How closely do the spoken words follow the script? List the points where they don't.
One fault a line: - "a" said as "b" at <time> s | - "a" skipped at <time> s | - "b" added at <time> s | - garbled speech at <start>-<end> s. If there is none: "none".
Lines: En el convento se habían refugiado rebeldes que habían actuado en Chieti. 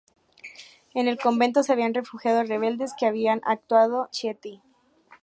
- "en" skipped at 4.1 s